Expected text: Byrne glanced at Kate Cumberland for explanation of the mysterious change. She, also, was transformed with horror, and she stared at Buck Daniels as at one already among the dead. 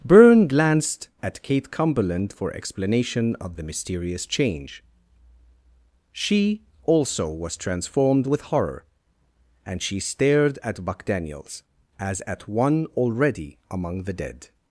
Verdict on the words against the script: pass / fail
pass